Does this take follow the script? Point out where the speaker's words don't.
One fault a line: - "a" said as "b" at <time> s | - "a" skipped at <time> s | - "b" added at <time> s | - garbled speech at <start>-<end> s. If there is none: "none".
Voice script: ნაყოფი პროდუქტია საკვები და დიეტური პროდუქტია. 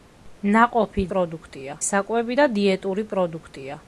none